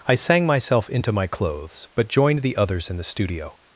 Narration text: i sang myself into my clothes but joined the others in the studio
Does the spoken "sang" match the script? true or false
true